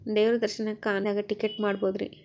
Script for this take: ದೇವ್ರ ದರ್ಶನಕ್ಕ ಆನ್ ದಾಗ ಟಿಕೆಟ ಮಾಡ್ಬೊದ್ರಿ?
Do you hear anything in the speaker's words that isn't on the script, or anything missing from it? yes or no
no